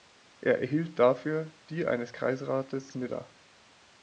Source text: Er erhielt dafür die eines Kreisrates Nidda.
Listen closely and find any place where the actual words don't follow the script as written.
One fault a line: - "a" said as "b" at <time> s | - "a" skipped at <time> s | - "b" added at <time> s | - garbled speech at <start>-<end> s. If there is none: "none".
none